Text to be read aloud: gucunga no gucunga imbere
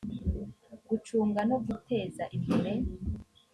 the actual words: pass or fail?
fail